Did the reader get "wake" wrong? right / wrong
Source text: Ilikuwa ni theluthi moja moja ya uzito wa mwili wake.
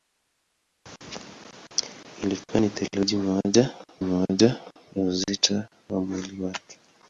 right